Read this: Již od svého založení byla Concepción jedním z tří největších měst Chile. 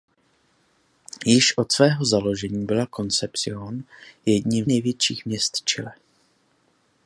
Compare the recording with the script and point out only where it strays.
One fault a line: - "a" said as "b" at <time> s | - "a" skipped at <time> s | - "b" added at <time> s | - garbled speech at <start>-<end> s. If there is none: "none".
- "z tří" skipped at 4.7 s